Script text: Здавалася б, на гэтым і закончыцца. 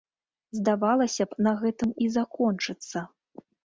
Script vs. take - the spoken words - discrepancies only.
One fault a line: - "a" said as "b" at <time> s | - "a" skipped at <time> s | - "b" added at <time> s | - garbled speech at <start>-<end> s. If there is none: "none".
none